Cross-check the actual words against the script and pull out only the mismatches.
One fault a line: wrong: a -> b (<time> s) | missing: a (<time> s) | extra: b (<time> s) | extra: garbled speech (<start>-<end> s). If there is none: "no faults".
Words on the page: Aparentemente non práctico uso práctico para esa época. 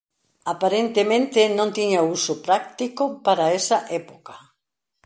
wrong: práctico -> tiña (1.8 s)